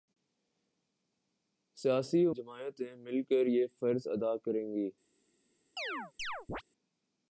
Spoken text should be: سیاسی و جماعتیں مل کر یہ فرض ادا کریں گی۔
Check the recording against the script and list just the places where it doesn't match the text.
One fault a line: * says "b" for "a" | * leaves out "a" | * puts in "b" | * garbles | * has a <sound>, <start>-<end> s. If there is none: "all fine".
* has a chirp, 5.8-6.6 s